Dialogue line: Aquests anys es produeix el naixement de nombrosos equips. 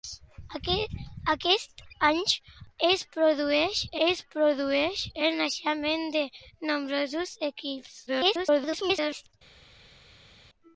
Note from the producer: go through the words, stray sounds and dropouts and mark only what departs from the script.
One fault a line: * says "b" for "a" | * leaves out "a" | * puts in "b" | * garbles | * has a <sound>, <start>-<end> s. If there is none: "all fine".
* puts in "es produeix"
* garbles